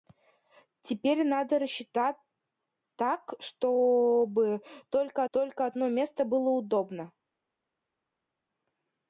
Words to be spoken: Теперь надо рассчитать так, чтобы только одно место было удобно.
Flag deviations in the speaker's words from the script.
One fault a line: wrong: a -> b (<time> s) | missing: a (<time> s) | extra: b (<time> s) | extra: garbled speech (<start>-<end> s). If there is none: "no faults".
extra: только (5.3 s)